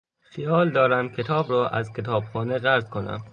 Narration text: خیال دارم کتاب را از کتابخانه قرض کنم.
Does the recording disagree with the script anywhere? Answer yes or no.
no